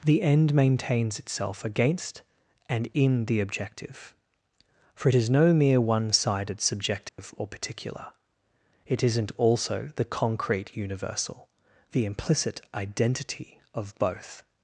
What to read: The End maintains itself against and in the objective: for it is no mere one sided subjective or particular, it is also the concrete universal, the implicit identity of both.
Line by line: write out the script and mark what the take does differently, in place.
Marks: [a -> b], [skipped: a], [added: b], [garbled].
The End maintains itself against and in the objective: for it is no mere one sided subjective or particular, it [is -> isn't] also the concrete universal, the implicit identity of both.